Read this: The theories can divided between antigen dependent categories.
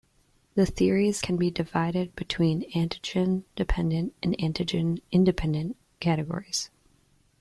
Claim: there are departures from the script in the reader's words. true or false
true